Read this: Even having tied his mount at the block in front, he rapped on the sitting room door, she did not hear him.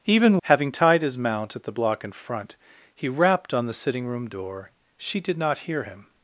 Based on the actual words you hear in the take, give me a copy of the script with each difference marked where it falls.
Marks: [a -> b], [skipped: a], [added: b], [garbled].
Even having tied his mount at the block in front, he rapped on the sitting room door, she did not hear him.